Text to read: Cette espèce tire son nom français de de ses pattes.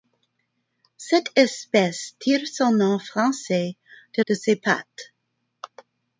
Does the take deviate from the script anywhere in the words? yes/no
no